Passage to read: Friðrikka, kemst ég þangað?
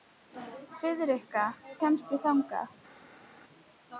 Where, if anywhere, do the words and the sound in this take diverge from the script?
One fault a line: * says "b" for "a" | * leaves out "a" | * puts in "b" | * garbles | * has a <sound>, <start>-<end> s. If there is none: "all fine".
all fine